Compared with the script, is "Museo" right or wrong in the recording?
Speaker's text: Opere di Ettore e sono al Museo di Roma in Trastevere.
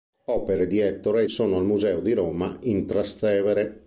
right